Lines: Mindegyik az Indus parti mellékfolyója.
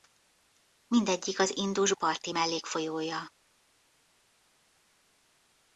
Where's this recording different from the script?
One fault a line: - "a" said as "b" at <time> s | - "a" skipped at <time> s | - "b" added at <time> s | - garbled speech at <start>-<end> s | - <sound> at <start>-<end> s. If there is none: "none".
none